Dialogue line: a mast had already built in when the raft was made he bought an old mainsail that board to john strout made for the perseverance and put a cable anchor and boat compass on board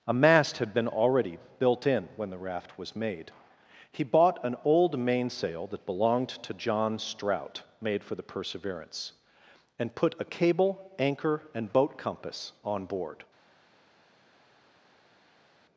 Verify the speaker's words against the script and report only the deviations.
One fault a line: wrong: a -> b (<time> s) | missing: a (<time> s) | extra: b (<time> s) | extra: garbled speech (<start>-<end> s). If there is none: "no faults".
extra: been (0.7 s)
wrong: board -> belonged (5.8 s)